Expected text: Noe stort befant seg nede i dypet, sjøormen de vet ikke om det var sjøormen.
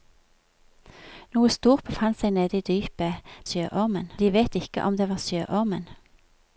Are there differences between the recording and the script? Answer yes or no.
no